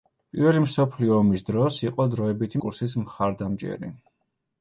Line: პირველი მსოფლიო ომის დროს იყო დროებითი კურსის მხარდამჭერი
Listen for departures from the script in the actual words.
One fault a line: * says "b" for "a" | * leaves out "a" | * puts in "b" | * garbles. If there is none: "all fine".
all fine